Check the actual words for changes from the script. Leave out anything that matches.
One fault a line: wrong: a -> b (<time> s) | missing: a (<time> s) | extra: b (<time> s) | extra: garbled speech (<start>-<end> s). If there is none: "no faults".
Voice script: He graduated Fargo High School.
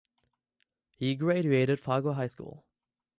no faults